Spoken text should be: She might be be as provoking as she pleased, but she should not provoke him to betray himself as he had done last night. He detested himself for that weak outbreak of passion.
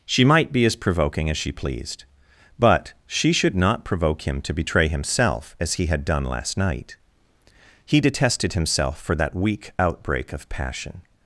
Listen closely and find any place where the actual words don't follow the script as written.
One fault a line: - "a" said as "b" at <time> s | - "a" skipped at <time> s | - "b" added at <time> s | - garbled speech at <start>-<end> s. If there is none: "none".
- "be" skipped at 0.7 s